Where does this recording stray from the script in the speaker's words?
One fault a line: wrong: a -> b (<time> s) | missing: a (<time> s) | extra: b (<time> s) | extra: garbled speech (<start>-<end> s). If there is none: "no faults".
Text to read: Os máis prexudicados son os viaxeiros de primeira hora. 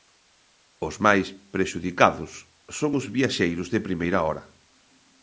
no faults